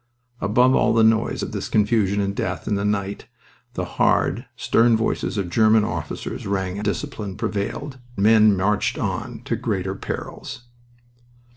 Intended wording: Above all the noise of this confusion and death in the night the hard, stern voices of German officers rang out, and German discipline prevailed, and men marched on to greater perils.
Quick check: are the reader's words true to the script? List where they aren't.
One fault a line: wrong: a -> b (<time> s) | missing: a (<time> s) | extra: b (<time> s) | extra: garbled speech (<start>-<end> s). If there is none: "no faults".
missing: out and German (6.8 s)
missing: and (8.0 s)